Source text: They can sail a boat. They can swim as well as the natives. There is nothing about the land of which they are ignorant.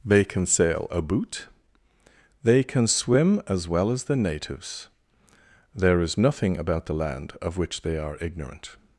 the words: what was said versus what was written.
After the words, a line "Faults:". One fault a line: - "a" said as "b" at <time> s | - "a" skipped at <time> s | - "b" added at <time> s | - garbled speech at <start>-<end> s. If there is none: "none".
They can sail a boot. They can swim as well as the natives. There is nothing about the land of which they are ignorant.
Faults:
- "boat" said as "boot" at 1.0 s